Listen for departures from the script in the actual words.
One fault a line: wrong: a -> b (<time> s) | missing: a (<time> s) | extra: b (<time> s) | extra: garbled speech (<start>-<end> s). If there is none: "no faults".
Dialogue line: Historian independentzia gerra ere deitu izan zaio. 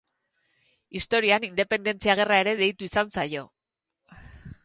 no faults